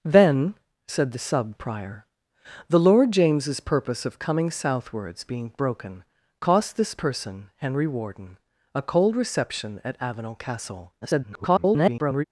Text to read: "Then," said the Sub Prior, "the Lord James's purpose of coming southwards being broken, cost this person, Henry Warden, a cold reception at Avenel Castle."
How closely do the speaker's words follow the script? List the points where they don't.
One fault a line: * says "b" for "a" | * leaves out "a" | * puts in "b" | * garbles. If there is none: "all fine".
* garbles